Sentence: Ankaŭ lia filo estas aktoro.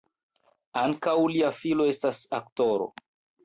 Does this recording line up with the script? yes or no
yes